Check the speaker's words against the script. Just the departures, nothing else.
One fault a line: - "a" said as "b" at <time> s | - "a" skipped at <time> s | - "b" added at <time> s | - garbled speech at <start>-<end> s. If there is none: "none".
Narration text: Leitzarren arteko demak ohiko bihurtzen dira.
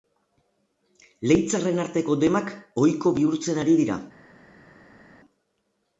- "ari" added at 3.6 s